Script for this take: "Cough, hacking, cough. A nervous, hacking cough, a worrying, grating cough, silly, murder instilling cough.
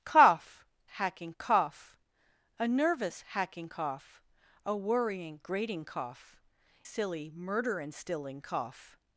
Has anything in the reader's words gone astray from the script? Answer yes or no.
no